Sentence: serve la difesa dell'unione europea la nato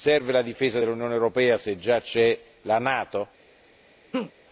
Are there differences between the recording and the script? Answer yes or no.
yes